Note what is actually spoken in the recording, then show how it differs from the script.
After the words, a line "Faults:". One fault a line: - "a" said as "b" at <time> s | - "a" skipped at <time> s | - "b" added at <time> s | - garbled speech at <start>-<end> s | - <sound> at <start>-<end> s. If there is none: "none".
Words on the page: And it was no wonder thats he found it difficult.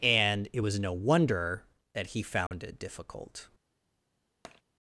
And it was no wonder that he found it difficult.
Faults:
- "thats" said as "that" at 1.9 s
- dropout at 2.5-2.5 s
- tap at 4.4-4.6 s